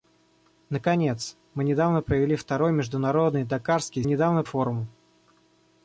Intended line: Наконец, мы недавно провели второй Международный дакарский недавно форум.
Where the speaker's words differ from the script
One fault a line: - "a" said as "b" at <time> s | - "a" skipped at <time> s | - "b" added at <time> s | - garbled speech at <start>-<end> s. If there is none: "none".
none